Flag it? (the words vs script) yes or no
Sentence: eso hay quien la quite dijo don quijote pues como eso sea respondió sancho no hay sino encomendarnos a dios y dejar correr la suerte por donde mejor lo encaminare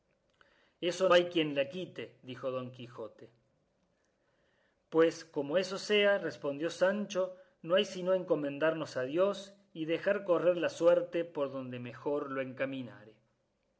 no